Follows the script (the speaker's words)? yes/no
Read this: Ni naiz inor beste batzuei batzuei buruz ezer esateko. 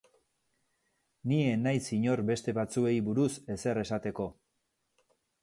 no